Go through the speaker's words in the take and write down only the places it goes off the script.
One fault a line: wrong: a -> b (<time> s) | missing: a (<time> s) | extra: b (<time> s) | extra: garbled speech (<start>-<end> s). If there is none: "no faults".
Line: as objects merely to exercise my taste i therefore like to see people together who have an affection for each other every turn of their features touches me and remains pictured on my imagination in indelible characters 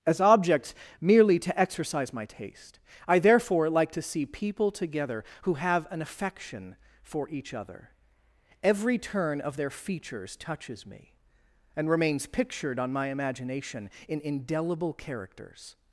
no faults